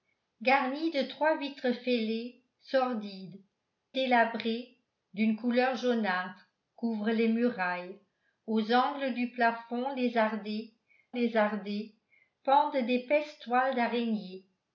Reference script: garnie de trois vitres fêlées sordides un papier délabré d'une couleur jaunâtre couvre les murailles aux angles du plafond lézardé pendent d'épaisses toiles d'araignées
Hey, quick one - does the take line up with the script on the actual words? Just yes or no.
no